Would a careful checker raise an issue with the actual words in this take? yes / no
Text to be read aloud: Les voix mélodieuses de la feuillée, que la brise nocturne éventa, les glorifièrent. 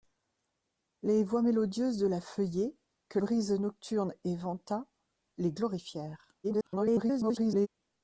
yes